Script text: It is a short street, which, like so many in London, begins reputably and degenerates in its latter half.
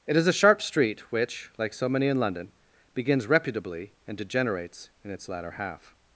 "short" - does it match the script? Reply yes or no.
no